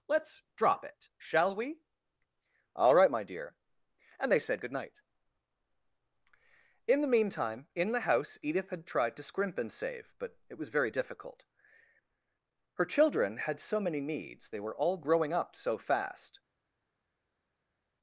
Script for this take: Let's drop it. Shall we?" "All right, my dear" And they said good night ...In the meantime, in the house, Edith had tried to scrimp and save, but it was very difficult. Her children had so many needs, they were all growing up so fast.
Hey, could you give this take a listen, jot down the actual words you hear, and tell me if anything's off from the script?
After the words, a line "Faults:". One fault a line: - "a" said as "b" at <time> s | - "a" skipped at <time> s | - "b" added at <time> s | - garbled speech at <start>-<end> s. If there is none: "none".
Let's drop it. Shall we?" "All right, my dear" And they said good night ...In the meantime, in the house, Edith had tried to scrimp and save, but it was very difficult. Her children had so many needs, they were all growing up so fast.
Faults:
none